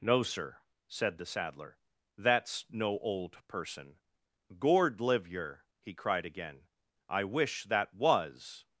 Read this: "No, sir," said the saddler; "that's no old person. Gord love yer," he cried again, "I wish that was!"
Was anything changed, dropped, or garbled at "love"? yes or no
yes